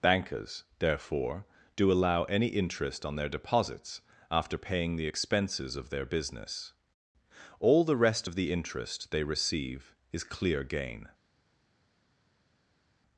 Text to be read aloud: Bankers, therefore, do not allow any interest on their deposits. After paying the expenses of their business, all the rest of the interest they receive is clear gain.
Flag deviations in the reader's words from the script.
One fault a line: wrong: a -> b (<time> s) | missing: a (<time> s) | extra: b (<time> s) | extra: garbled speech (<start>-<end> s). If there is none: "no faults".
missing: not (1.9 s)